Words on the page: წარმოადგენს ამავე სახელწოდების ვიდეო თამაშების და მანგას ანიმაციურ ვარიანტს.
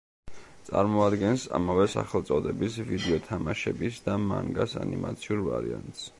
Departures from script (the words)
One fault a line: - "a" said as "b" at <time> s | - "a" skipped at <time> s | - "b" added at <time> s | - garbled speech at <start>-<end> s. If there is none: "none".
none